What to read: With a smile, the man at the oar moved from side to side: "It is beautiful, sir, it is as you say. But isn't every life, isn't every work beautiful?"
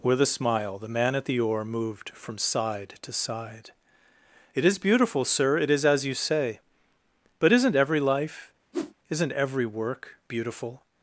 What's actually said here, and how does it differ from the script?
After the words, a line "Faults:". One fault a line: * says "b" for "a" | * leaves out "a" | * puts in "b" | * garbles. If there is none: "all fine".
With a smile, the man at the oar moved from side to side: "It is beautiful, sir, it is as you say. But isn't every life, isn't every work beautiful?"
Faults:
all fine